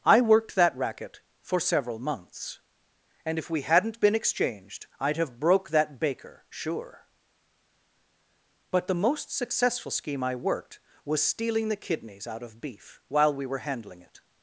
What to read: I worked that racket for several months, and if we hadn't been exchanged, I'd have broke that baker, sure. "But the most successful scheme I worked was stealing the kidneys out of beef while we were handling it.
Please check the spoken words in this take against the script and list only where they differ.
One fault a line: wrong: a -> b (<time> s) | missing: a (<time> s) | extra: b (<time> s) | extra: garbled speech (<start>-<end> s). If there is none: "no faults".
no faults